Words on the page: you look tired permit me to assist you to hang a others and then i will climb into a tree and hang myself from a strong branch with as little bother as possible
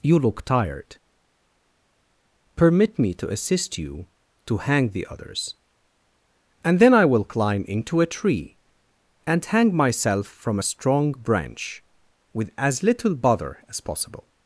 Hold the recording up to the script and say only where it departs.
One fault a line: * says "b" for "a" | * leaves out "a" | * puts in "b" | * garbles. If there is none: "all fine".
* says "the" for "a"